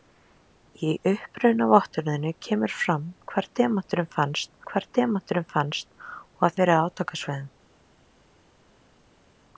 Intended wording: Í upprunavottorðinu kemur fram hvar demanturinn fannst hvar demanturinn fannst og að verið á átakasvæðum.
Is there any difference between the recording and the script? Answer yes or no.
no